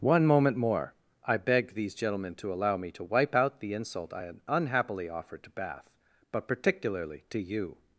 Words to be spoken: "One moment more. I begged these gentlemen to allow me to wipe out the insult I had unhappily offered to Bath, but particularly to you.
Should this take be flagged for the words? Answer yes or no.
no